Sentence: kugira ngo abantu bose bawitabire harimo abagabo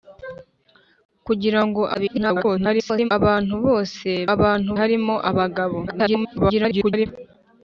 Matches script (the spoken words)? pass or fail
fail